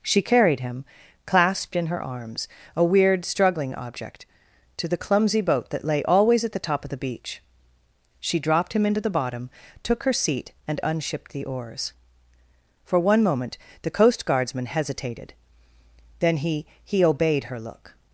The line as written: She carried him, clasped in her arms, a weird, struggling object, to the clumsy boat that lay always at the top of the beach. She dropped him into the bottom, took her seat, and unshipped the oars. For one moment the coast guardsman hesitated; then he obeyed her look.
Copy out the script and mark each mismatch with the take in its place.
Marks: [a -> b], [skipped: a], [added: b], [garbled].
She carried him, clasped in her arms, a weird, struggling object, to the clumsy boat that lay always at the top of the beach. She dropped him into the bottom, took her seat, and unshipped the oars. For one moment the coast guardsman hesitated; then he [added: he] obeyed her look.